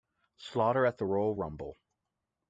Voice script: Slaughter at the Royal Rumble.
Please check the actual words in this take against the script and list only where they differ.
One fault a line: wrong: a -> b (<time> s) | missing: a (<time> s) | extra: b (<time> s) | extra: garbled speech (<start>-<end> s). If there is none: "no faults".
no faults